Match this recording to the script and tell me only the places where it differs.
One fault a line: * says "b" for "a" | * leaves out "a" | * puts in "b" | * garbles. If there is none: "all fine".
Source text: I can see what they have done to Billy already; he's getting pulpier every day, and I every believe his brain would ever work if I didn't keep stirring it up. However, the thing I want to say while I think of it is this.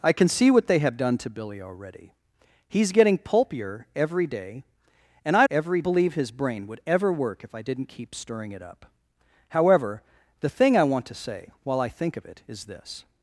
all fine